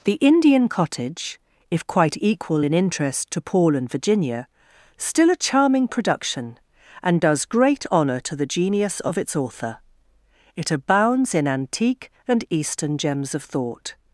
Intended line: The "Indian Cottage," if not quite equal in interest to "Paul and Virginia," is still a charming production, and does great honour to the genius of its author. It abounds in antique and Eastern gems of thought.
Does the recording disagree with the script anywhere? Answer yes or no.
yes